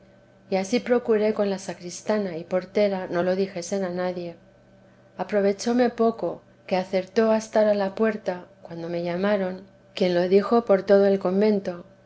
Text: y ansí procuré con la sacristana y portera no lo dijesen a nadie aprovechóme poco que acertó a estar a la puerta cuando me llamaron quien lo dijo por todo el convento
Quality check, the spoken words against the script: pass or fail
pass